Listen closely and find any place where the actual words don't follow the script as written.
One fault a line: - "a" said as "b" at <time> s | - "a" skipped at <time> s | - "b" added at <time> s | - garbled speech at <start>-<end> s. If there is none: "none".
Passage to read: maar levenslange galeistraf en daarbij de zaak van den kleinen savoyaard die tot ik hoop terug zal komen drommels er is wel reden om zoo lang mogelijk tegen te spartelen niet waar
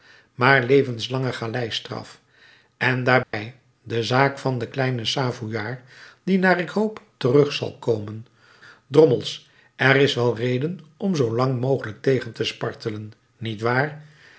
- "tot" said as "naar" at 6.4 s